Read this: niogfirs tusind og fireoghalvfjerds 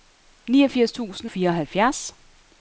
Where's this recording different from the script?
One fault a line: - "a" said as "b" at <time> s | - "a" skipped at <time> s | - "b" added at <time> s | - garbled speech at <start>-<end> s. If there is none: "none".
- "og" skipped at 1.3 s